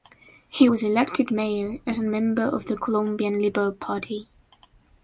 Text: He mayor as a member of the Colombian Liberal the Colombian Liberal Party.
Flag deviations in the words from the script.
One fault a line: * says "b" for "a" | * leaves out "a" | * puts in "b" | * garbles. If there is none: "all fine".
* puts in "was elected"
* leaves out "the Colombian Liberal"